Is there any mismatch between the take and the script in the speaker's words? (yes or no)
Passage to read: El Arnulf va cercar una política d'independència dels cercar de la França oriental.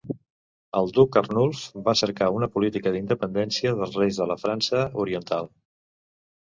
yes